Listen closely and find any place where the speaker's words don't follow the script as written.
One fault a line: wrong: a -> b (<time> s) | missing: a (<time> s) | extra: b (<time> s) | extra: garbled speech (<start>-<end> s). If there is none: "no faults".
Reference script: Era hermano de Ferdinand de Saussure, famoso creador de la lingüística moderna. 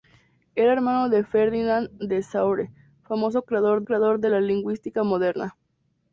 extra: creador (3.8 s)